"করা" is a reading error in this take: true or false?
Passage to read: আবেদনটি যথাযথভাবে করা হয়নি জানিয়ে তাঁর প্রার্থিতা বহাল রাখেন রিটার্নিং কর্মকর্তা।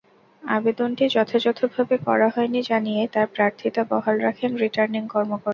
false